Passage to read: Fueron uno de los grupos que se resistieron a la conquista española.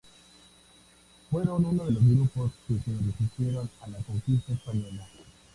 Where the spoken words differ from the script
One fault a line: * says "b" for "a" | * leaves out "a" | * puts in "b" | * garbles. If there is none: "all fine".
all fine